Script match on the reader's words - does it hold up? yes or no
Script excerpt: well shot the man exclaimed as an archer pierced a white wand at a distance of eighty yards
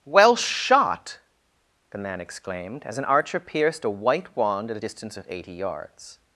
yes